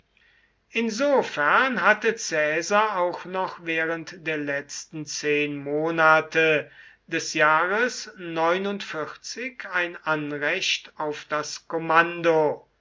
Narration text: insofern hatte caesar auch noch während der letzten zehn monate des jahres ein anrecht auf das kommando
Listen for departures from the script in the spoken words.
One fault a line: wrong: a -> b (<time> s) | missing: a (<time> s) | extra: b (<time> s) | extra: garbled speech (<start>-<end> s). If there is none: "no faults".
no faults